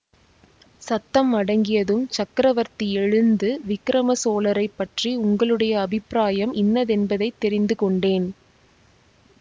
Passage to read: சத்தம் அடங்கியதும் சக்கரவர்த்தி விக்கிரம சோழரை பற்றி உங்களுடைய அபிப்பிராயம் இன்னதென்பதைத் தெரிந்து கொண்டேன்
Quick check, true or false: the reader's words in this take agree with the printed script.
false